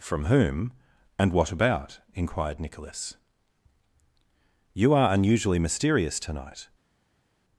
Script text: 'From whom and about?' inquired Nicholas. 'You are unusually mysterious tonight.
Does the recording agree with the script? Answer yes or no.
no